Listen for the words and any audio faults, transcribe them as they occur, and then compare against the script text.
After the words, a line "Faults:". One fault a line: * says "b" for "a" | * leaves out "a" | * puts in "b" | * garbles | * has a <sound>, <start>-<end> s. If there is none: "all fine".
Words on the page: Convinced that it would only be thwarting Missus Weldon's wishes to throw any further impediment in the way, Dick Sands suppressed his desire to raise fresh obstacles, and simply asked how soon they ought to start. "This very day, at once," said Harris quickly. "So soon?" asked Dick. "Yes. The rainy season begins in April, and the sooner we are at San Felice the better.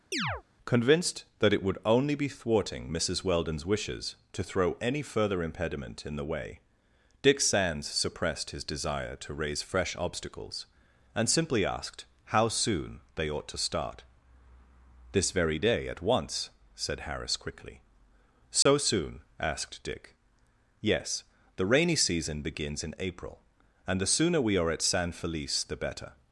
Convinced that it would only be thwarting Missus Weldon's wishes to throw any further impediment in the way, Dick Sands suppressed his desire to raise fresh obstacles, and simply asked how soon they ought to start. "This very day, at once," said Harris quickly. "So soon?" asked Dick. "Yes. The rainy season begins in April, and the sooner we are at San Felice the better.
Faults:
* has a chirp, 0.1-0.4 s
* has a dropout, 18.6-18.7 s